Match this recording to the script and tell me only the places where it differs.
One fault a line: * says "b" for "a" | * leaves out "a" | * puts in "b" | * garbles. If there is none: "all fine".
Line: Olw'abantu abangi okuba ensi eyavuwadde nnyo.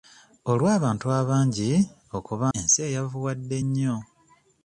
all fine